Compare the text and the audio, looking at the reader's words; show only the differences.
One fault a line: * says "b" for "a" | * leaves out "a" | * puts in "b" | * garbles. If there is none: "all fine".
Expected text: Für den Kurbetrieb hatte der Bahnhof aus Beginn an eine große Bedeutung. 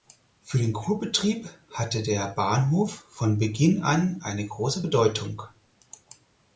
* says "von" for "aus"